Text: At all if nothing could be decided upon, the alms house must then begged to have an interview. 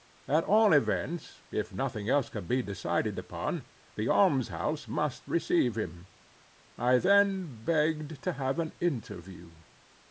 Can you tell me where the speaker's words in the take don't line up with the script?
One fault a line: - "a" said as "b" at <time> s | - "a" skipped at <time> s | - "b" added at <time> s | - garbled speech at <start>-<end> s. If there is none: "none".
- "events" added at 0.7 s
- "else" added at 2.1 s
- "receive him I" added at 5.3 s